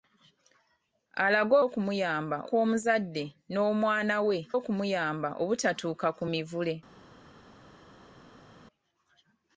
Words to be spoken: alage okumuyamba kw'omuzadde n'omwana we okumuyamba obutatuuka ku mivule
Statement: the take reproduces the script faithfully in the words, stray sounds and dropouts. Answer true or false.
true